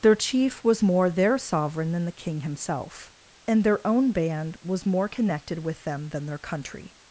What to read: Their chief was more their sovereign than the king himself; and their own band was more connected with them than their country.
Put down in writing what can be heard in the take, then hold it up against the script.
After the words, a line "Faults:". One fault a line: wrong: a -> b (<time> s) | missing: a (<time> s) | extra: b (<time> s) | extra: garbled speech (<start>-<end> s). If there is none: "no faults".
Their chief was more their sovereign than the king himself; and their own band was more connected with them than their country.
Faults:
no faults